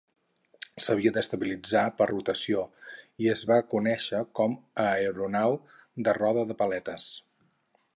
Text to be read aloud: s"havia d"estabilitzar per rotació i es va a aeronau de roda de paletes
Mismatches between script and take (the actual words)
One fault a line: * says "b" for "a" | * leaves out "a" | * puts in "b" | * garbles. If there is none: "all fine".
* puts in "conèixer com"